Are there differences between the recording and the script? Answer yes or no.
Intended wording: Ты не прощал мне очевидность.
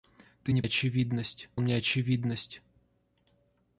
yes